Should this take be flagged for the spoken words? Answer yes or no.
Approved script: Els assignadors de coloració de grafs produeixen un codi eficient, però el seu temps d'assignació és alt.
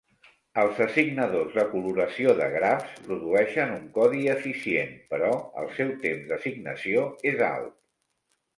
no